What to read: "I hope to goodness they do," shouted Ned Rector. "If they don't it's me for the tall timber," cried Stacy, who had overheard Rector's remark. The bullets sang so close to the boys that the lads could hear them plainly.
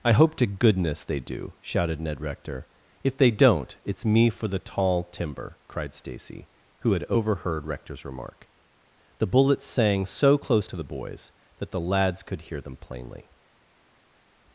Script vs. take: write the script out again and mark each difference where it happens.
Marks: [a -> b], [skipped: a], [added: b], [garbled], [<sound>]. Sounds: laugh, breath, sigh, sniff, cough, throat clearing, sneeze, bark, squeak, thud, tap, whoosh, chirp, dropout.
"I hope to goodness they do," shouted Ned Rector. "If they don't it's me for the tall timber," cried Stacy, who had overheard Rector's remark. The bullets sang so close to the boys that the lads could hear them plainly.